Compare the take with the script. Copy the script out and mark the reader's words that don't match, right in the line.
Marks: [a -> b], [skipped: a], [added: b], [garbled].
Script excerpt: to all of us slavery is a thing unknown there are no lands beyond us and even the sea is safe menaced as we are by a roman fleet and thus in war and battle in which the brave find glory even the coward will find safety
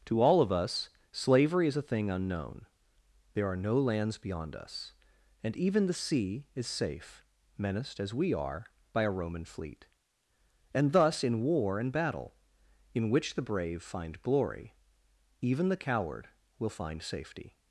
to all of us slavery is a thing unknown there are no lands beyond us and even the sea is safe menaced as we are by a roman fleet and thus in war and battle in which the brave find glory even the coward will find safety